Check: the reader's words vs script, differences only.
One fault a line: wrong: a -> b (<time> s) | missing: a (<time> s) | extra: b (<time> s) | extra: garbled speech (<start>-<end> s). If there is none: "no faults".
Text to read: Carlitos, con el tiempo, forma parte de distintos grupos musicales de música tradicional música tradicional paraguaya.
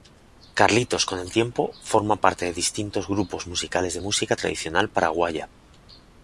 missing: música tradicional (4.9 s)